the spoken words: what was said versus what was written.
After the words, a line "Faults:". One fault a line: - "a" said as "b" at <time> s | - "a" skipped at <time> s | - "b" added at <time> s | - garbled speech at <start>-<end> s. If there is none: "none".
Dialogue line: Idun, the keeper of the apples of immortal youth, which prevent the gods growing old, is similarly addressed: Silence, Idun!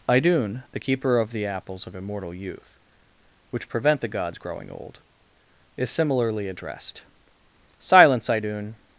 Idun, the keeper of the apples of immortal youth, which prevent the gods growing old, is similarly addressed: Silence, Idun!
Faults:
none